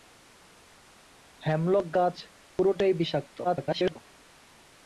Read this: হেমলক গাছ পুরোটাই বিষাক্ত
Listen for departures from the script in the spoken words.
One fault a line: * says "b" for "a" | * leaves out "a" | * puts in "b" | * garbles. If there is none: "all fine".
* garbles